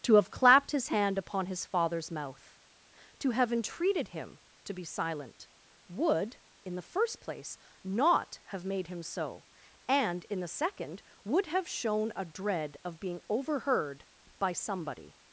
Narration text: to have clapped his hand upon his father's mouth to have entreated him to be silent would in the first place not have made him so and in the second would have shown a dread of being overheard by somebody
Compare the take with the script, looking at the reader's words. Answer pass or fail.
pass